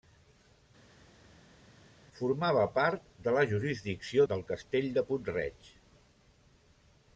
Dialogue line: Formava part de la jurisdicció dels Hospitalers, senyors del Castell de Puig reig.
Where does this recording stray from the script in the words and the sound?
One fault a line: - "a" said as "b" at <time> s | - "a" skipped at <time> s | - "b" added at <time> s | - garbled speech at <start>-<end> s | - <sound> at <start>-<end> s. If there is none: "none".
- "dels Hospitalers senyors" skipped at 4.3 s